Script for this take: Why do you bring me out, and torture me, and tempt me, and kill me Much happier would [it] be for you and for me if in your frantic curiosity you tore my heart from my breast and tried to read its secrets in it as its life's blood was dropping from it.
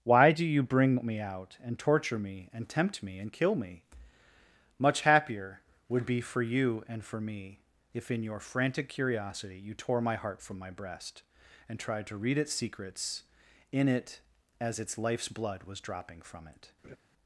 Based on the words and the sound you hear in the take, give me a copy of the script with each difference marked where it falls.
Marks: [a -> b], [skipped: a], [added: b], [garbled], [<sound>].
Why do you bring me out, and torture me, and tempt me, and kill me Much happier would [skipped: [it]] be for you and for me if in your frantic curiosity you tore my heart from my breast and tried to read its secrets in it as its life's blood was dropping from it. [laugh]